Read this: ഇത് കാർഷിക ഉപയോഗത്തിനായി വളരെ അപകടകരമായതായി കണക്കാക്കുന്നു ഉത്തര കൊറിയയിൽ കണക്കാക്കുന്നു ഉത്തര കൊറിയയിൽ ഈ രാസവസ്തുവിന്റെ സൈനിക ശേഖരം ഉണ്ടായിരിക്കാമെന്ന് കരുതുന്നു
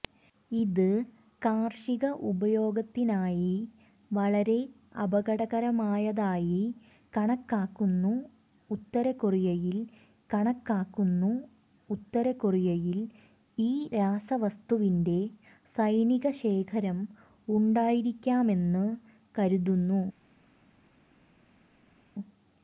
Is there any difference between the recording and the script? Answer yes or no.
no